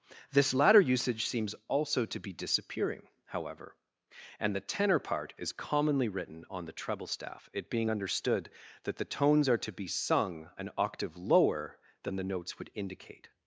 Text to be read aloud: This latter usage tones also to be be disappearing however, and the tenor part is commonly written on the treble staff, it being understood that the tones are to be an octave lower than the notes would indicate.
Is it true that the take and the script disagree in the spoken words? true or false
true